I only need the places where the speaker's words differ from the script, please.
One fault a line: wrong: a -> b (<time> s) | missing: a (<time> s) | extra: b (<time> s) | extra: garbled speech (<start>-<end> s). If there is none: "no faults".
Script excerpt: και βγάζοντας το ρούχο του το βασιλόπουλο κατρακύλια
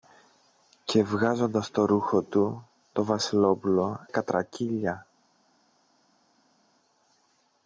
no faults